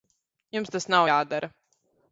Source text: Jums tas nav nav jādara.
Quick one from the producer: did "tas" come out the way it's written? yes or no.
yes